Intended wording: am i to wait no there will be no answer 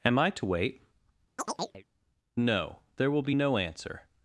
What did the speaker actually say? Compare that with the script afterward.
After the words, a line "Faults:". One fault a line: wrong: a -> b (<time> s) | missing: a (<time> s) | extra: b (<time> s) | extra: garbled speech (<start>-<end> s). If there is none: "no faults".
am i to wait no there will be no answer
Faults:
no faults